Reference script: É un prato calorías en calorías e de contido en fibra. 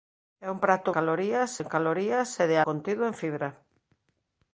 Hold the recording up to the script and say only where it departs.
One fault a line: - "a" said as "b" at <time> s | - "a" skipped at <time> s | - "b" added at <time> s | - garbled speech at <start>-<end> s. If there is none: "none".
none